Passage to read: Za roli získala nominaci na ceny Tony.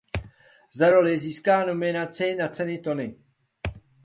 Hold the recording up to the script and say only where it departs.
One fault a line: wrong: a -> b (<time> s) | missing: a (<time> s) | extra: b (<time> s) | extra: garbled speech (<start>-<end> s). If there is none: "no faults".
no faults